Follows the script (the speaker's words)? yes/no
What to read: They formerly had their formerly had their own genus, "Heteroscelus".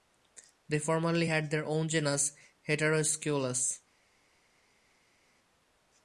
no